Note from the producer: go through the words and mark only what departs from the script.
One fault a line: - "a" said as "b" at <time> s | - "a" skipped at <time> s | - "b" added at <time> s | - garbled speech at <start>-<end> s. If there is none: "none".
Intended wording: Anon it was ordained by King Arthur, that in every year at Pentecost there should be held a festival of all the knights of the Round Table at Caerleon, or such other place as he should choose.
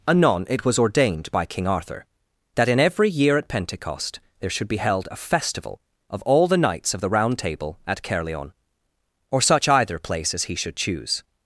- "other" said as "either" at 9.7 s